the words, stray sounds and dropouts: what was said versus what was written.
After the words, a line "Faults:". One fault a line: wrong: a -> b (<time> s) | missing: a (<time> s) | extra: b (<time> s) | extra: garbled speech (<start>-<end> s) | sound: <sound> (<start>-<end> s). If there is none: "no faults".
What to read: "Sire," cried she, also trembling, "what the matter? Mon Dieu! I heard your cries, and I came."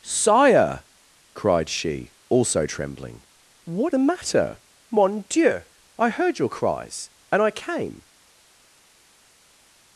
"Sire," cried she, also trembling, "what the matter? Mon Dieu! I heard your cries, and I came."
Faults:
no faults